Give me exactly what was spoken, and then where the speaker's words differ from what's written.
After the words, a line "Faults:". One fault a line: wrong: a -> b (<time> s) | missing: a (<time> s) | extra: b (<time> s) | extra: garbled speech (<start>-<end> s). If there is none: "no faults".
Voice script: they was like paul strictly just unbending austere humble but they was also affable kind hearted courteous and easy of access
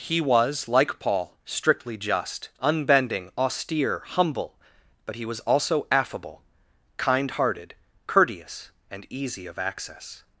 he was like paul strictly just unbending austere humble but he was also affable kind hearted courteous and easy of access
Faults:
wrong: they -> he (0.0 s)
wrong: they -> he (5.2 s)